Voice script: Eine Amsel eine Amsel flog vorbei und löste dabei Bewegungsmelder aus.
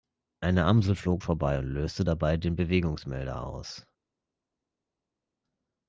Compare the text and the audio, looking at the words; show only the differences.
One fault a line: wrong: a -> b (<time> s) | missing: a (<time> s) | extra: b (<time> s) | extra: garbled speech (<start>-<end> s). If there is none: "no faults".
missing: eine Amsel (0.9 s)
extra: den (2.4 s)